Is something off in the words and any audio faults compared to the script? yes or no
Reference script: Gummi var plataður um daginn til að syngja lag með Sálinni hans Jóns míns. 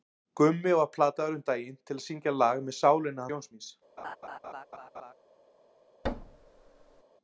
yes